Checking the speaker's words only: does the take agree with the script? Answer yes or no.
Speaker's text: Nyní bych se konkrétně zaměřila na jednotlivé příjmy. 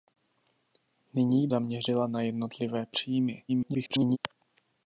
no